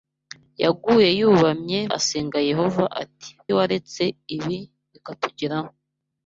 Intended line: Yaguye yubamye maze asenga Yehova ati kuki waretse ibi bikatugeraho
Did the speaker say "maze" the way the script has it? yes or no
no